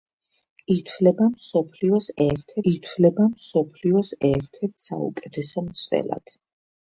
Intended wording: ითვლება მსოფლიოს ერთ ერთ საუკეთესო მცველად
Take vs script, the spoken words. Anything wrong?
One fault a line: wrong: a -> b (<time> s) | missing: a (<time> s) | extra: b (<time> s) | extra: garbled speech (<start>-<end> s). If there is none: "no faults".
extra: ითვლება მსოფლიოს ერთ (2.7 s)